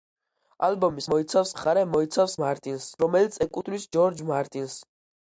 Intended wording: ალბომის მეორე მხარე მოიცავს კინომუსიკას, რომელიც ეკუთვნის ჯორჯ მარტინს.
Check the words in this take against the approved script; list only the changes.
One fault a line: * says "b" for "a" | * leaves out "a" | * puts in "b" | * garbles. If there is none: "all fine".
* says "მოიცავს" for "მეორე"
* says "მარტინს" for "კინომუსიკას"